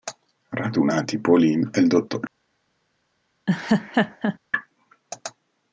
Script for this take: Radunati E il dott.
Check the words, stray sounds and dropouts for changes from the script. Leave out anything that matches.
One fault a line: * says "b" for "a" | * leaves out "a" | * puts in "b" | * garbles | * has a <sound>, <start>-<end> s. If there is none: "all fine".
* puts in "Pauline"
* has a laugh, 3.5-4.4 s